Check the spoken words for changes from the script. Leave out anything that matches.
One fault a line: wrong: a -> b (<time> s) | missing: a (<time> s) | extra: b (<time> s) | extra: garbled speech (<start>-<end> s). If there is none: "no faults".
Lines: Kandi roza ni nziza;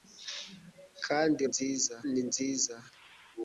wrong: roza -> nziza (1.5 s)